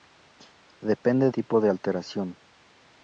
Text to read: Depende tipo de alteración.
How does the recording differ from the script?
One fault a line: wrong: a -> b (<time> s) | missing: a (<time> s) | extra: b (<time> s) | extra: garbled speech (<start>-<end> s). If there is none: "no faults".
no faults